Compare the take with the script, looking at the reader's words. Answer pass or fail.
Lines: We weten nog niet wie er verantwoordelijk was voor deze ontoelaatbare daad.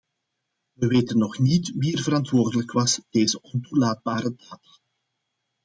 fail